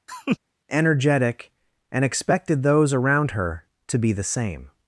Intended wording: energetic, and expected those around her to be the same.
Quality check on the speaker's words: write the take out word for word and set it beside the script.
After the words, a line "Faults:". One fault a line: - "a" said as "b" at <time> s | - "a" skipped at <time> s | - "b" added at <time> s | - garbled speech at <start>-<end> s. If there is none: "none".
energetic, and expected those around her to be the same.
Faults:
none